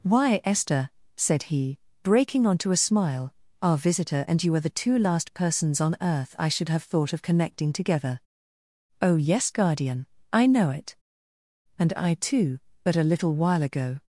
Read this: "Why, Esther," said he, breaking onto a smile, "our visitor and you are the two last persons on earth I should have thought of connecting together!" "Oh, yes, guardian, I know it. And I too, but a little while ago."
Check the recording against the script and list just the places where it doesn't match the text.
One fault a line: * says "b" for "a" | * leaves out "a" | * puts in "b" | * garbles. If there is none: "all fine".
all fine